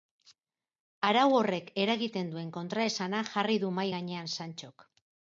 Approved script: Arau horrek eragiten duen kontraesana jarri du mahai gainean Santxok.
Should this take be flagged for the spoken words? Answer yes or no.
no